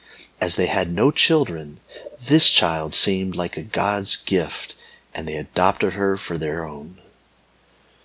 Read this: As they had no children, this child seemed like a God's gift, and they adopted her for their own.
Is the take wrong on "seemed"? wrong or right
right